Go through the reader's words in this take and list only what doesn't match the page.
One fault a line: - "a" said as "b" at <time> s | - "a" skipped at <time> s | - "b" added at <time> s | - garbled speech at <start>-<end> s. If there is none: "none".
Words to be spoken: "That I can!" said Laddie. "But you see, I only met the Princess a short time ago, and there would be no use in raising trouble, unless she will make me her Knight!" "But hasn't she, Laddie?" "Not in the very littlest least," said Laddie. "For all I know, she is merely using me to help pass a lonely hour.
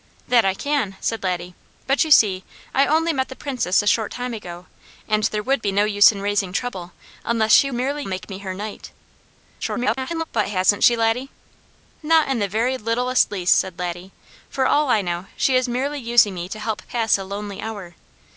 - "will" said as "merely" at 7.7 s
- garbled speech at 9.6-10.2 s